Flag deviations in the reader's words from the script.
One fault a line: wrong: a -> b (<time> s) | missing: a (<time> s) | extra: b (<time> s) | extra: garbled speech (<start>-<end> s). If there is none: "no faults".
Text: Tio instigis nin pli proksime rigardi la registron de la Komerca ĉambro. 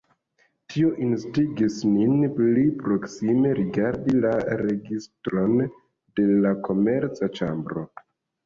no faults